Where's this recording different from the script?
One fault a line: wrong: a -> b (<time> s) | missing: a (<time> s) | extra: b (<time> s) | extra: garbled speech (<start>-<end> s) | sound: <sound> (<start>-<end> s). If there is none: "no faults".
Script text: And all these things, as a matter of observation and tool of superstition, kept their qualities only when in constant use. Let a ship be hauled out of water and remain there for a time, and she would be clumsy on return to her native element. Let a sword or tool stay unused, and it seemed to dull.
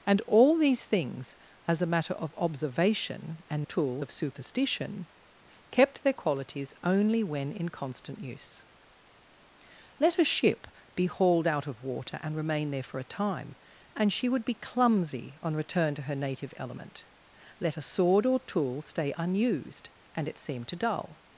no faults